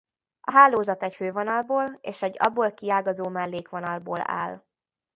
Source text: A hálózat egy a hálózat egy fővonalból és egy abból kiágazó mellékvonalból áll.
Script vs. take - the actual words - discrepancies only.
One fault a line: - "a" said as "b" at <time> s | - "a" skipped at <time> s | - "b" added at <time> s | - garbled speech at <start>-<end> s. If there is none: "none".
- "a hálózat egy" skipped at 1.1 s